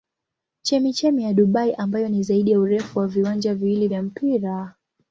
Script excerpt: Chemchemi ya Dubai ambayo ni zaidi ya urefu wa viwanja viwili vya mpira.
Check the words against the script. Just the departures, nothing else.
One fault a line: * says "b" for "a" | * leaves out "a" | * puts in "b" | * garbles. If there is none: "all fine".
all fine